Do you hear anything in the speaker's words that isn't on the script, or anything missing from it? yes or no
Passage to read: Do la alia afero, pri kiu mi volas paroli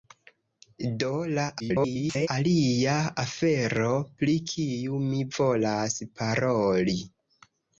yes